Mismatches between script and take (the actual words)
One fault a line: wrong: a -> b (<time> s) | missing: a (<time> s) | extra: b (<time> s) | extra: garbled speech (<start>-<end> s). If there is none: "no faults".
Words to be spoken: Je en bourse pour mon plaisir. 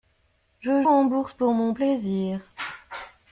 no faults